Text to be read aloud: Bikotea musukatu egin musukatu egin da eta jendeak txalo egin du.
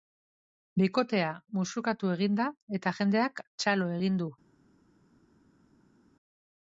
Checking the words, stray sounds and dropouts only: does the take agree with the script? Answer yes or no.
no